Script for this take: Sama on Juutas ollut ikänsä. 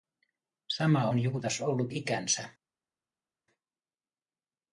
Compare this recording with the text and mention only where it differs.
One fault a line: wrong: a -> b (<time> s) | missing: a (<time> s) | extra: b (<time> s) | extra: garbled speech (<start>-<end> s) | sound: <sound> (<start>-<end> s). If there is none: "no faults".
no faults